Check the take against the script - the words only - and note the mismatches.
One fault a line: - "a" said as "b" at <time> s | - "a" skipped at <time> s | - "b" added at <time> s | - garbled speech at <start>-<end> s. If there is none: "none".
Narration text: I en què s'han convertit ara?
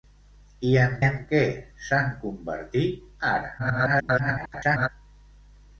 - "en" added at 1.1 s
- garbled speech at 3.6-4.9 s